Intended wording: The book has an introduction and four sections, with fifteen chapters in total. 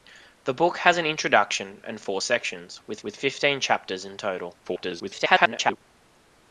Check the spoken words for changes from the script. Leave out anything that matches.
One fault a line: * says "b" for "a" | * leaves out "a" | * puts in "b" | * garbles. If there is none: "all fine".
* puts in "with"
* garbles